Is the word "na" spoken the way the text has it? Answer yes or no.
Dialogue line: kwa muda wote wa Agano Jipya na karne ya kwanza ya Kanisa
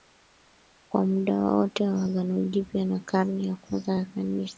yes